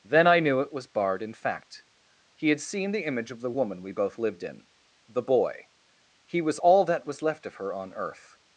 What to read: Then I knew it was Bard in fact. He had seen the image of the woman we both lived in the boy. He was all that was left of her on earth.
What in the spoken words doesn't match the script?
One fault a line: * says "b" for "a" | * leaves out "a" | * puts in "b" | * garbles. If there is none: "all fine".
all fine